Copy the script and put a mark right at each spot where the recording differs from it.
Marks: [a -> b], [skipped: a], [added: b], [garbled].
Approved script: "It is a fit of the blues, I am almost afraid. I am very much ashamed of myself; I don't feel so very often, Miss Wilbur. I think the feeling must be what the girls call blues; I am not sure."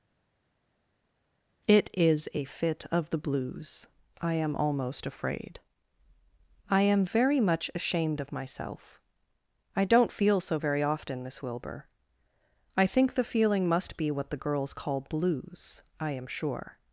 "It is a fit of the blues, I am almost afraid. I am very much ashamed of myself; I don't feel so very often, Miss Wilbur. I think the feeling must be what the girls call blues; I am [skipped: not] sure."